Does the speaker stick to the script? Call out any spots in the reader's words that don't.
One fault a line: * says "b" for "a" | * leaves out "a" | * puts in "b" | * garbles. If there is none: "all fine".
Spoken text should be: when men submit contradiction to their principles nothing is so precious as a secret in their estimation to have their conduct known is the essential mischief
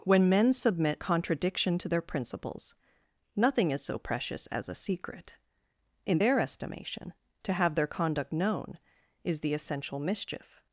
all fine